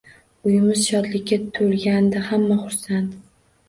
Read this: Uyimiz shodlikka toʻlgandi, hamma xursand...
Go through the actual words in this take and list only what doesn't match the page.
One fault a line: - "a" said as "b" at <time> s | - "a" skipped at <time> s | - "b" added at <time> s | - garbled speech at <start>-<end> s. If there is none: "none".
none